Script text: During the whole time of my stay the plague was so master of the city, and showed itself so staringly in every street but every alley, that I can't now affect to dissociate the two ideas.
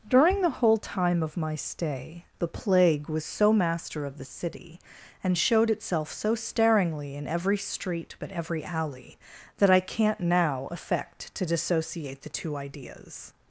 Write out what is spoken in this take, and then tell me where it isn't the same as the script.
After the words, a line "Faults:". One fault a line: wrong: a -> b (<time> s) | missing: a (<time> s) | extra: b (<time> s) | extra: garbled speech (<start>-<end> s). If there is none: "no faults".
During the whole time of my stay the plague was so master of the city, and showed itself so staringly in every street but every alley, that I can't now affect to dissociate the two ideas.
Faults:
no faults